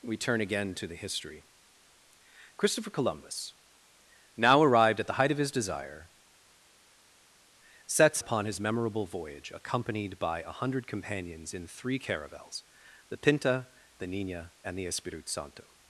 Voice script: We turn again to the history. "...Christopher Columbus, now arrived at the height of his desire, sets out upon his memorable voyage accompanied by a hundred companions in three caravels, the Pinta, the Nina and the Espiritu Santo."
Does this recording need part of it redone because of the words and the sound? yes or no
yes